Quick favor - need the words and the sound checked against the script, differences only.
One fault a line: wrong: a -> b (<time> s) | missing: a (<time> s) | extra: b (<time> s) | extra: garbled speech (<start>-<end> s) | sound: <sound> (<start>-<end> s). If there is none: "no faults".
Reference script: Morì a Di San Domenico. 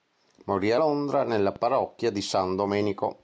extra: Londra nella parrocchia (0.8 s)